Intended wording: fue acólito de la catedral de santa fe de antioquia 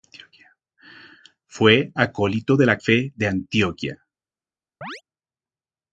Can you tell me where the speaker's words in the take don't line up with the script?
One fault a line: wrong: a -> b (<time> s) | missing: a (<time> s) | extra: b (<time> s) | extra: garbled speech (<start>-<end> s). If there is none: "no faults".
missing: catedral de santa (2.8 s)